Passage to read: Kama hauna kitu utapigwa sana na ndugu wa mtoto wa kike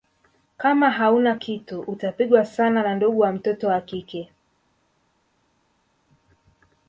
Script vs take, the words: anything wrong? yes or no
no